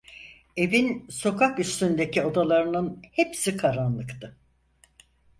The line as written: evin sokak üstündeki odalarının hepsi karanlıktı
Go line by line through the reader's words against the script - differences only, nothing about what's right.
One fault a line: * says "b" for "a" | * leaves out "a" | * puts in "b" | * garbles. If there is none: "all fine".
all fine